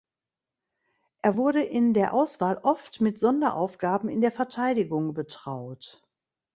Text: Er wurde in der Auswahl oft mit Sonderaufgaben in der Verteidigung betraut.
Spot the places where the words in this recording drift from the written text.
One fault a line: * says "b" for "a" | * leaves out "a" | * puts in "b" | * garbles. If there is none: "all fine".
all fine